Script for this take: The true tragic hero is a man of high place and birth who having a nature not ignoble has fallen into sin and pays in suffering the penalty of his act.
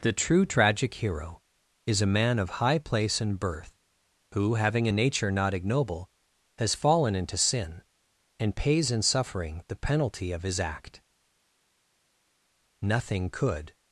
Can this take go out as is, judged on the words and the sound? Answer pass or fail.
fail